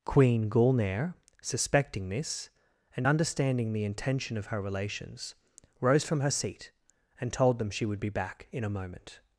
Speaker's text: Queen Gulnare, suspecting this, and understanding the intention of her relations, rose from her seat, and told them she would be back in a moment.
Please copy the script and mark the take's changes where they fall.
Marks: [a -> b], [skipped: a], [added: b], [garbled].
Queen Gulnare, suspecting this, and understanding the intention of her relations, rose from her seat, and told them she would be back in a moment.